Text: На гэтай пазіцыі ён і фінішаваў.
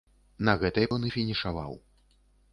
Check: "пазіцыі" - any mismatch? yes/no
yes